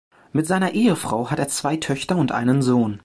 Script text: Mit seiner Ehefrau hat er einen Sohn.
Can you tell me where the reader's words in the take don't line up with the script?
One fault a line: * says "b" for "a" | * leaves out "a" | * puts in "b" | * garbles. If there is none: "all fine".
* puts in "zwei Töchter und"